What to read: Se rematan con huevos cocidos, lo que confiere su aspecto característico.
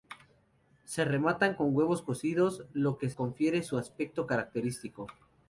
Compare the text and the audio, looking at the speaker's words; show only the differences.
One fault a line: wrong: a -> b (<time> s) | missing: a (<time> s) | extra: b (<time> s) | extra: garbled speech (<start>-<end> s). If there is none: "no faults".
no faults